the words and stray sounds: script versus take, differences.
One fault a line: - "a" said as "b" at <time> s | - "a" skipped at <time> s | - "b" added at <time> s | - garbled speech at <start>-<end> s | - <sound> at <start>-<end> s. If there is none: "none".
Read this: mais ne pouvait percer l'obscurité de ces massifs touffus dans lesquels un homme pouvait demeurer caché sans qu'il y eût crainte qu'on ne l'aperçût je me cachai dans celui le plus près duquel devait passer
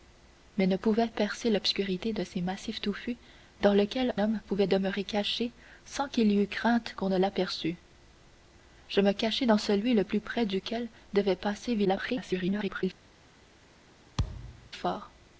- "un" skipped at 4.2 s
- garbled speech at 11.8-12.8 s
- thud at 14.2-14.7 s